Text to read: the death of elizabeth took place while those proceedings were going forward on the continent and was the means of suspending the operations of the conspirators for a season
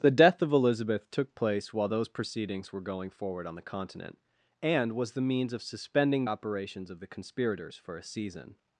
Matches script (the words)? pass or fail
fail